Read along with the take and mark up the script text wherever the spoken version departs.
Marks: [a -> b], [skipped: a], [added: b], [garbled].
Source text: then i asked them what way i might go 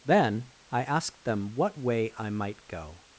then i asked them what way i might go